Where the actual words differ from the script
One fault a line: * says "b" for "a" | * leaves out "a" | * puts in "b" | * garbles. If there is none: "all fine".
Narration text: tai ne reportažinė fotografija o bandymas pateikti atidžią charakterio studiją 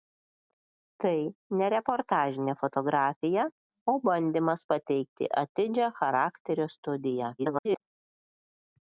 * garbles